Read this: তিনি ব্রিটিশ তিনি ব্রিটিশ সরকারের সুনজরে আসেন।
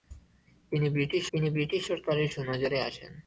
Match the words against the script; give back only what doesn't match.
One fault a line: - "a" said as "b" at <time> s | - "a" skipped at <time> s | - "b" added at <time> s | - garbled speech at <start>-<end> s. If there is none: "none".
none